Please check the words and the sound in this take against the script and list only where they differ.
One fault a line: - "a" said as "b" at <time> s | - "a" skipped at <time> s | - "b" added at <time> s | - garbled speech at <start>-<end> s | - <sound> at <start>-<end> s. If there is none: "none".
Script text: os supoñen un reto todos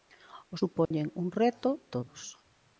- dropout at 0.8-0.9 s